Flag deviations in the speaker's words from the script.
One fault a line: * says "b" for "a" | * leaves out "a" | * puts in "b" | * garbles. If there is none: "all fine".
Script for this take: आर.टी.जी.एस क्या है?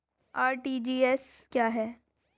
all fine